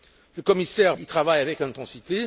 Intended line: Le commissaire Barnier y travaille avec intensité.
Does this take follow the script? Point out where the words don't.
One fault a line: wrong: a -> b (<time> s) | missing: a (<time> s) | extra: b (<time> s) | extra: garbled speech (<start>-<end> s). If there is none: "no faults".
missing: Barnier (1.0 s)